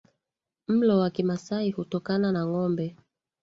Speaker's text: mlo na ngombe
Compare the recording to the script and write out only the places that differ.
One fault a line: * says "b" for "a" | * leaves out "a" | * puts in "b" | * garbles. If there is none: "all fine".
* puts in "wa kimasai hutokana"